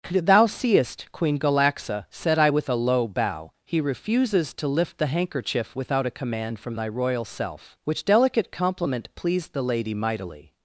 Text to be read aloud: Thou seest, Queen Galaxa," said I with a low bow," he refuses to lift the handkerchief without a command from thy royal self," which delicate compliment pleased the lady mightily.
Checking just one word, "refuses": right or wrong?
right